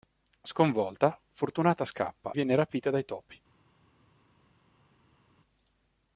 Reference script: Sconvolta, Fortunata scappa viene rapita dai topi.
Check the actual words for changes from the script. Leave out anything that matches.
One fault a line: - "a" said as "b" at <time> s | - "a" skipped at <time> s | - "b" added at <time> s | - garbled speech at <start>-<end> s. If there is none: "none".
none